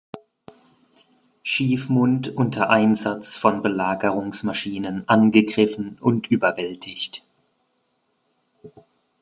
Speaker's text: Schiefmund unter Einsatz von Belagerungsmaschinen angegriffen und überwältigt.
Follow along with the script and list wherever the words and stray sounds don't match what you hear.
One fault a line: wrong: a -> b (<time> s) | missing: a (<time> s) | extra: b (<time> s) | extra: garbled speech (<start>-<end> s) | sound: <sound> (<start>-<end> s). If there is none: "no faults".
no faults